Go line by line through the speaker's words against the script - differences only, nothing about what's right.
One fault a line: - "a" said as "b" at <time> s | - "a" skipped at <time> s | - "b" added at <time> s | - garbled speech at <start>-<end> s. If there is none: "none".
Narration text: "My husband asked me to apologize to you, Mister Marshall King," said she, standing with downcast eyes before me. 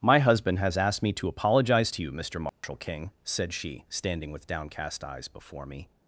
- "has" added at 0.6 s